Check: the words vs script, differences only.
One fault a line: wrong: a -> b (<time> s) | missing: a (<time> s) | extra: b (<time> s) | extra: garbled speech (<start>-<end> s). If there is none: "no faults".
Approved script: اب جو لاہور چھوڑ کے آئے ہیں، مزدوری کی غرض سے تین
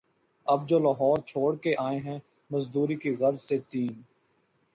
no faults